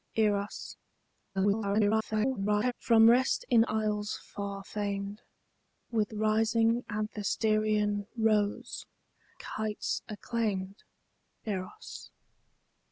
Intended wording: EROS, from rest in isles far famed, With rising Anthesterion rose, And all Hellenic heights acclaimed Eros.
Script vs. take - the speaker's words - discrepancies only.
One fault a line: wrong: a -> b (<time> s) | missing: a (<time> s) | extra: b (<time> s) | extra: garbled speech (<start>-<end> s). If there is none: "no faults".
extra: garbled speech (1.3-2.7 s)
missing: And all Hellenic (8.9 s)